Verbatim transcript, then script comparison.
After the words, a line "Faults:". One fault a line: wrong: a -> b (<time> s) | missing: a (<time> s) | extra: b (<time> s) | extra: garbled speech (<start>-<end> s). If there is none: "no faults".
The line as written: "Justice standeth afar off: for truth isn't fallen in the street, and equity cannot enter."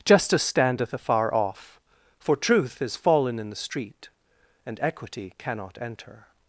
"Justice standeth afar off: for truth is fallen in the street, and equity cannot enter."
Faults:
wrong: isn't -> is (2.8 s)